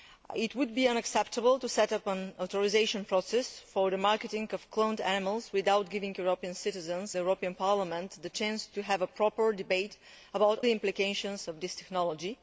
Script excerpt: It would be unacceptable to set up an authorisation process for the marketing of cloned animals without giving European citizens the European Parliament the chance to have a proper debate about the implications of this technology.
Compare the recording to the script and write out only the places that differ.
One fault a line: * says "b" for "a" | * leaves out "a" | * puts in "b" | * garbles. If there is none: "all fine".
all fine